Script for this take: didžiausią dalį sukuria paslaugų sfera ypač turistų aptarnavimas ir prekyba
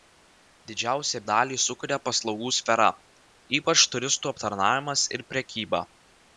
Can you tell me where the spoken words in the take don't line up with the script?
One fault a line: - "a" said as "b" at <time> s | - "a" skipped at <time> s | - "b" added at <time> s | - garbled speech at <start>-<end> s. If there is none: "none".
none